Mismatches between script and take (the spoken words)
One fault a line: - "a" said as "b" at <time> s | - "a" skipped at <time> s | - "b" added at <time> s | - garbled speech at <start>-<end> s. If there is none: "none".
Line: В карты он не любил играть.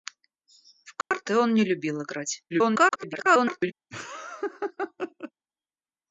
- garbled speech at 2.5-3.7 s